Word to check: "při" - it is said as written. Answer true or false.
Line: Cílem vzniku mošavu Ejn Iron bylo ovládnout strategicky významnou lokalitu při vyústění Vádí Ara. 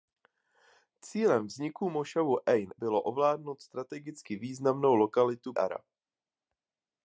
false